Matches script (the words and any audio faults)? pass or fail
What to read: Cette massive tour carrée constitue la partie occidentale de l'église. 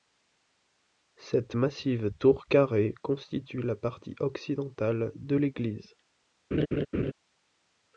fail